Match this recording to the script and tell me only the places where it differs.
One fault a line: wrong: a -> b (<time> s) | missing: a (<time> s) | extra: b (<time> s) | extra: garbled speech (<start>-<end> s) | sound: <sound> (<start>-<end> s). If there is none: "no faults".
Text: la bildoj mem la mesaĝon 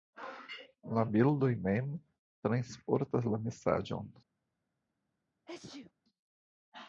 extra: transportas (2.5 s)
sound: sneeze (5.5-5.9 s)